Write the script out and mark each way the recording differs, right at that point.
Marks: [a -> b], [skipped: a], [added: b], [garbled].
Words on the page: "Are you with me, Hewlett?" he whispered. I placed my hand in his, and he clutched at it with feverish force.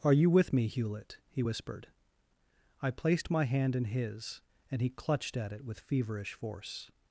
"Are you with me, Hewlett?" he whispered. I placed my hand in his, and he clutched at it with feverish force.